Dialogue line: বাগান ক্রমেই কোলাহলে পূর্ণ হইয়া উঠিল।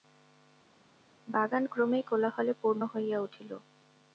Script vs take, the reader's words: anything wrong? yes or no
no